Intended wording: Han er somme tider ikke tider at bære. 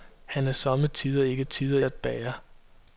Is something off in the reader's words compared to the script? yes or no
no